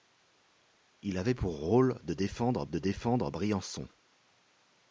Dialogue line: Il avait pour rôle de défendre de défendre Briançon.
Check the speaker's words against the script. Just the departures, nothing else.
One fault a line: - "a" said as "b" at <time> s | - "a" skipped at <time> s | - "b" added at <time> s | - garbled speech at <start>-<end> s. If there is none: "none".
none